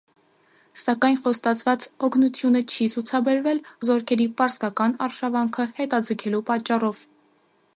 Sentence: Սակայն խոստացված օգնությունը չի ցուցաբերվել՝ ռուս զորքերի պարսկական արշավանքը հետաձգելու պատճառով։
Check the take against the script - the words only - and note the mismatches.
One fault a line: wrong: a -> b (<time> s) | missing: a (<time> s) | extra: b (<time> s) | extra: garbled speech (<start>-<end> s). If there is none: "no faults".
missing: ռուս (3.6 s)